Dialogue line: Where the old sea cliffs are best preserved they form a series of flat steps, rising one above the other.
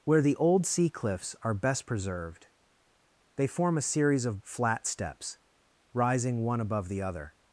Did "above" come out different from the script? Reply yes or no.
no